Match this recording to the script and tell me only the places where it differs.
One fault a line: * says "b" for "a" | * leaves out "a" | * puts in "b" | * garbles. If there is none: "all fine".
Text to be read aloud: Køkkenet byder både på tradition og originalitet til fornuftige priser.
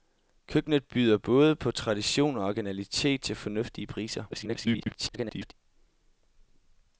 * garbles